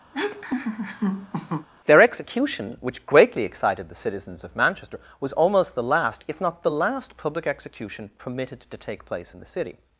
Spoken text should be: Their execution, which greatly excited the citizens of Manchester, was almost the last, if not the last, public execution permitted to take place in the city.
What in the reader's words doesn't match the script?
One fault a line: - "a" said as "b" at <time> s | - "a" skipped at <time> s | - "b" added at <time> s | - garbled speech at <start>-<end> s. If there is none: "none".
none